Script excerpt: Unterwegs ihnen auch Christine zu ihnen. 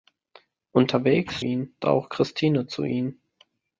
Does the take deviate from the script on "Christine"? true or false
false